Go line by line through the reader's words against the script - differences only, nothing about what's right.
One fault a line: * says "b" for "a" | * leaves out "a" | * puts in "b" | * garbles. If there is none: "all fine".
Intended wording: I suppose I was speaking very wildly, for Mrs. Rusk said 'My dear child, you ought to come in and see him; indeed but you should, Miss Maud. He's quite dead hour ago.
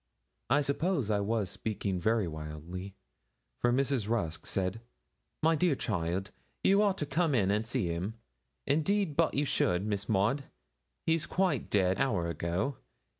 all fine